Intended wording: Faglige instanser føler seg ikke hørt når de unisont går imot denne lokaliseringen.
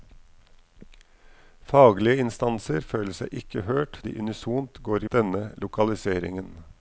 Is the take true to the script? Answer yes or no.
no